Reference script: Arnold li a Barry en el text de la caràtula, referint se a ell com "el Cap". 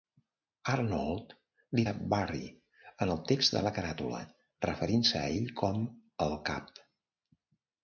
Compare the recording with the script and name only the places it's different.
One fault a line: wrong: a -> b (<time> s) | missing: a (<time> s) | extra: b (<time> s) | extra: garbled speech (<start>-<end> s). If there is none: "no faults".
no faults